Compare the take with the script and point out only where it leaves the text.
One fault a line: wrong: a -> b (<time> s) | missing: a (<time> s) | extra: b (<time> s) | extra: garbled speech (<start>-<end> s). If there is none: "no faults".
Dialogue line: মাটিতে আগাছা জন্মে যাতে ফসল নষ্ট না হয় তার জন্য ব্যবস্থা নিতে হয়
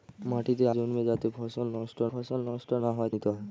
missing: আগাছা (0.7 s)
extra: ফসল নষ্ট (2.1 s)
missing: তার জন্য ব্যবস্থা (3.1 s)